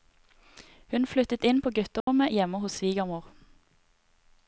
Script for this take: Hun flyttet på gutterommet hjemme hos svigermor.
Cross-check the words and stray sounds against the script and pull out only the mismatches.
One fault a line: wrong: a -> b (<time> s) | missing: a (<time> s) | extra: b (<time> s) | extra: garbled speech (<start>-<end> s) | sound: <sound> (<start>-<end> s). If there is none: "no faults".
extra: inn (1.5 s)
sound: dropout (2.0-2.1 s)